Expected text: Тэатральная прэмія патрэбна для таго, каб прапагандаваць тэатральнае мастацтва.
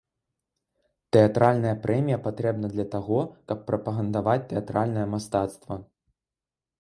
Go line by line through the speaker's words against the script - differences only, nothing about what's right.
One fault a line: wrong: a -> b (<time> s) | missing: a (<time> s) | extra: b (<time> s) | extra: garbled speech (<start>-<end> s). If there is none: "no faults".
no faults